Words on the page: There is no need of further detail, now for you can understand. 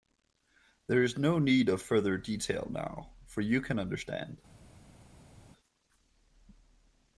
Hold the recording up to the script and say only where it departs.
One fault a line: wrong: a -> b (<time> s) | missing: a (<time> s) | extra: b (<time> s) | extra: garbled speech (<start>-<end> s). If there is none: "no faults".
no faults